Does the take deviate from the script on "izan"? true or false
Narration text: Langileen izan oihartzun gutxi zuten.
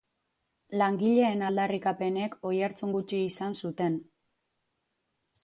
true